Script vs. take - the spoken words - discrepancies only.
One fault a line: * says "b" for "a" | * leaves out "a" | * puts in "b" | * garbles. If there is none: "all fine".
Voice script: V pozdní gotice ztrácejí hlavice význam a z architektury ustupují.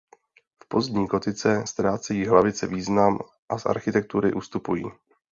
all fine